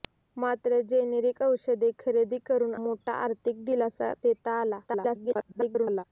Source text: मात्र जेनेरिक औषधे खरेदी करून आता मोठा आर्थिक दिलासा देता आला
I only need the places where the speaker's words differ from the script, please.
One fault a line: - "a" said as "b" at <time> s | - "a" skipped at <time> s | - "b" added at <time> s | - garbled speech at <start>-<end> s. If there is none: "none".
- "आता" skipped at 2.7 s
- garbled speech at 4.9-6.0 s